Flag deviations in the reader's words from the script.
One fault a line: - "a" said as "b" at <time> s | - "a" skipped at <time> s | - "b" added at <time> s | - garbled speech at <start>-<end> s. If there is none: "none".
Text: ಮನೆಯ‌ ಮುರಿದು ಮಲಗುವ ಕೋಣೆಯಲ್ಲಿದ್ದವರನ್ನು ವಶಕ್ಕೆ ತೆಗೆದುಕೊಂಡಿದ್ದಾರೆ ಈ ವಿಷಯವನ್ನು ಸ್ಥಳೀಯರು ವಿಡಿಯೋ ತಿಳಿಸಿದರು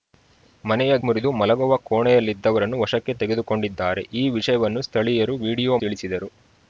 none